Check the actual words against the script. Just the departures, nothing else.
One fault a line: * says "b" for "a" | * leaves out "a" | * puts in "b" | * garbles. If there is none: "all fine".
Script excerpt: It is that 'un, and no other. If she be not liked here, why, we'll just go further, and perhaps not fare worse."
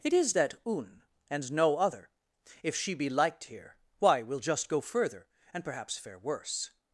* leaves out "not"
* leaves out "not"